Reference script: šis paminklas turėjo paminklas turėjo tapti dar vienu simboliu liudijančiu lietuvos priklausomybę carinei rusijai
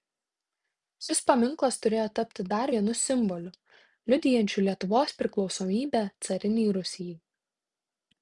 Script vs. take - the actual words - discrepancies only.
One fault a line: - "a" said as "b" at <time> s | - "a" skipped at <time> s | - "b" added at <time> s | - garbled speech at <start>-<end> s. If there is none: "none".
- "paminklas turėjo" skipped at 2.0 s